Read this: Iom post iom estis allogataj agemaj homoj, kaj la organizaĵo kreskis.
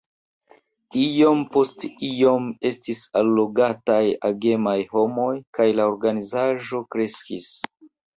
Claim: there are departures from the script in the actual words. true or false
false